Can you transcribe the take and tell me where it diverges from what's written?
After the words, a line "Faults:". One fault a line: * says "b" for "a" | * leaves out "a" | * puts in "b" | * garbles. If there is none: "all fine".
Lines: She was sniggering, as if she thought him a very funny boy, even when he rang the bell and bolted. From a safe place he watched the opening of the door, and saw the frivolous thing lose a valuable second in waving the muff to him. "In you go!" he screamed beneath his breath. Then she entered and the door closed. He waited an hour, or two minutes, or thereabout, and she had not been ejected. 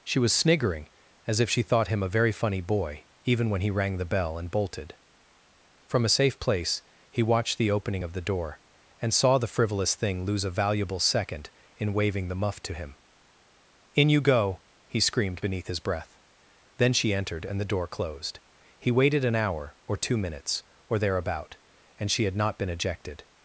She was sniggering, as if she thought him a very funny boy, even when he rang the bell and bolted. From a safe place he watched the opening of the door, and saw the frivolous thing lose a valuable second in waving the muff to him. "In you go!" he screamed beneath his breath. Then she entered and the door closed. He waited an hour, or two minutes, or thereabout, and she had not been ejected.
Faults:
all fine